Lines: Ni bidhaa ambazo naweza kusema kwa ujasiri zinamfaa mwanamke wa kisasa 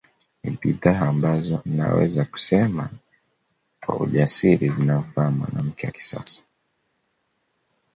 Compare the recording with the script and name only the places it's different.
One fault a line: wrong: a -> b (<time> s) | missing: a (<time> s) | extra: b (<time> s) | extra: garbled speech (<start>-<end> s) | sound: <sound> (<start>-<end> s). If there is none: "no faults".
no faults